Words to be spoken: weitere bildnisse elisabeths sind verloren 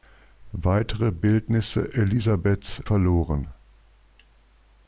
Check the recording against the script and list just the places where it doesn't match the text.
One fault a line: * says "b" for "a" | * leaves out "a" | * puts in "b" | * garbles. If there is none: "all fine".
* leaves out "sind"